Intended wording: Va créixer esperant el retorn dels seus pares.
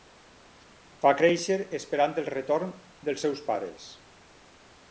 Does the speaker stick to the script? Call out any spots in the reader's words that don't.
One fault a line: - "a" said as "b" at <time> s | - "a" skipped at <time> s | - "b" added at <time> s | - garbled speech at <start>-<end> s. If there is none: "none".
none